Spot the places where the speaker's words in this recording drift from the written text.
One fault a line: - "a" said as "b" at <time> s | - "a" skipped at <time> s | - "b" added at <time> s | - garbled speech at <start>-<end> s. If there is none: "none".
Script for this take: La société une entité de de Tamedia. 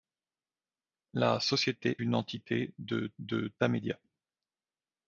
none